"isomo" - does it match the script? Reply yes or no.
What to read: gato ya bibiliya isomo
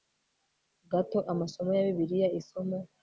yes